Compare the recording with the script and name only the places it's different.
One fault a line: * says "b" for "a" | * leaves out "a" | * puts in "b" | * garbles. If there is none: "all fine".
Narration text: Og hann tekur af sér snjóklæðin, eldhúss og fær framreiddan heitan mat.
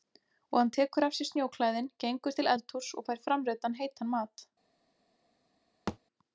* puts in "gengur til"